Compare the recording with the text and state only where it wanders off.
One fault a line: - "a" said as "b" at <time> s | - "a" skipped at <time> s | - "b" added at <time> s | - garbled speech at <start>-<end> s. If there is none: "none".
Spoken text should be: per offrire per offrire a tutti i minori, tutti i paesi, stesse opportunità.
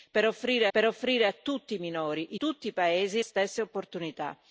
none